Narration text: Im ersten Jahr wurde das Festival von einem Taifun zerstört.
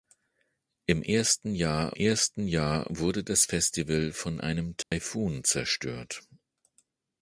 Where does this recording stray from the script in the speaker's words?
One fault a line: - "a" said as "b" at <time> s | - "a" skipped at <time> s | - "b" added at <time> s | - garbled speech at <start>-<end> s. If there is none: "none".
- "ersten Jahr" added at 1.9 s